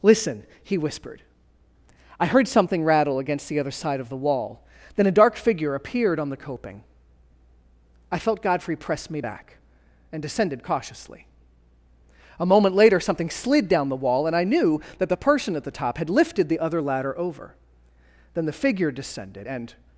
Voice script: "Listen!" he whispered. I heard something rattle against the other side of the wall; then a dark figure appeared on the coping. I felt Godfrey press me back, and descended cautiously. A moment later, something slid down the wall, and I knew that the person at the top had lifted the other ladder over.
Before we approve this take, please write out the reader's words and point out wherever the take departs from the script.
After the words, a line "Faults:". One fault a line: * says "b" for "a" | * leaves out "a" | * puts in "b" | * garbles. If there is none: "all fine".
"Listen!" he whispered. I heard something rattle against the other side of the wall; then a dark figure appeared on the coping. I felt Godfrey press me back, and descended cautiously. A moment later, something slid down the wall, and I knew that the person at the top had lifted the other ladder over. Then the figure descended, and
Faults:
* puts in "Then the figure descended and"